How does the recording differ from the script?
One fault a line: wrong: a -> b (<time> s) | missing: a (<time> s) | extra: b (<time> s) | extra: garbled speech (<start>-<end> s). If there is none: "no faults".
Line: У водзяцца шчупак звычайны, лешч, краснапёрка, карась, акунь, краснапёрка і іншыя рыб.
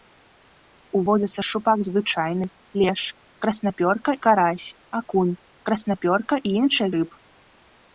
no faults